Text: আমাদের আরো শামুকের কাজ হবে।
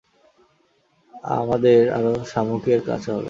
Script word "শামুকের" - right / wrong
right